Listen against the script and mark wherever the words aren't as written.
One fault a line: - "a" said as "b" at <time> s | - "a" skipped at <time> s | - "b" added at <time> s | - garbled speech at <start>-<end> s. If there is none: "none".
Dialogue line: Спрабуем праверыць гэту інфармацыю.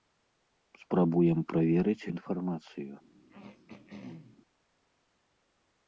- "гэту" skipped at 2.1 s